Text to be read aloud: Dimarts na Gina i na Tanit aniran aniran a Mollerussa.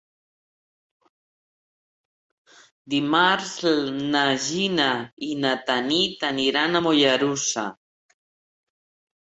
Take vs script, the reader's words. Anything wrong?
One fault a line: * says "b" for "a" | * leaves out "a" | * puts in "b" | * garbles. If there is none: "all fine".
* leaves out "aniran"